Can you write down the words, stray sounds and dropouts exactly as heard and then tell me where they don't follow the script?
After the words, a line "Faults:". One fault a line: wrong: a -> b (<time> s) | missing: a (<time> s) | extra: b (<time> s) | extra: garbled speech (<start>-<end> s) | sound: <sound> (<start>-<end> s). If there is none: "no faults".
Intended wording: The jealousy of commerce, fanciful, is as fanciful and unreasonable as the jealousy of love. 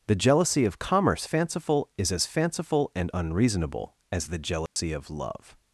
The jealousy of commerce, fanciful, is as fanciful and unreasonable as the jealousy of love.
Faults:
sound: dropout (4.7-4.8 s)